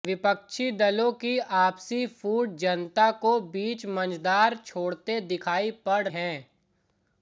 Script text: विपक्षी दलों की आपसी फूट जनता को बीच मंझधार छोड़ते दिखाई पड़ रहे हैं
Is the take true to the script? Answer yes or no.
no